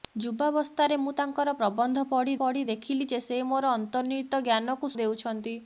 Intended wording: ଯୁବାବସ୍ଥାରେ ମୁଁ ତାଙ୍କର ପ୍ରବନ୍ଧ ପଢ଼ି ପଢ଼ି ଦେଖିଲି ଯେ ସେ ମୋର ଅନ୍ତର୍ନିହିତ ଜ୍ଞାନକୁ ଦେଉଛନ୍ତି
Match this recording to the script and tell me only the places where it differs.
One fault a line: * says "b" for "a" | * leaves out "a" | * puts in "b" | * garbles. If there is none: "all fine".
all fine